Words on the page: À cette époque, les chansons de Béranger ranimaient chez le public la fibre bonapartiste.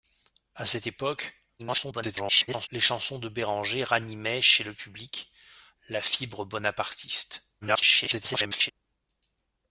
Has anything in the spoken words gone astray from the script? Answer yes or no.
yes